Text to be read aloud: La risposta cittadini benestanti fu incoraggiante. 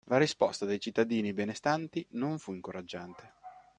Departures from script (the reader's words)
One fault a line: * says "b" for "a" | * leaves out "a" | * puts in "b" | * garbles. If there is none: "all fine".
* puts in "dei"
* puts in "non"